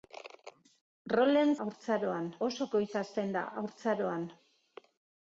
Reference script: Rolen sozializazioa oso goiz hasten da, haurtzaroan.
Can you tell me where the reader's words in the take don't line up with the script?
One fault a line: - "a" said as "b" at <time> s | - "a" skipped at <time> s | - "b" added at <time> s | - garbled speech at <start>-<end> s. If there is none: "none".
- "sozializazioa" said as "haurtzaroan" at 1.7 s